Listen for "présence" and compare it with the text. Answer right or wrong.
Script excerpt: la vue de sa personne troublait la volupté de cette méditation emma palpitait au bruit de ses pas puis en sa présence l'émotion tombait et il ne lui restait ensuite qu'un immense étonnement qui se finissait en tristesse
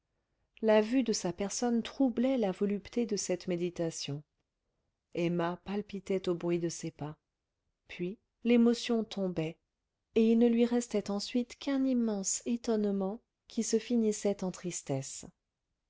wrong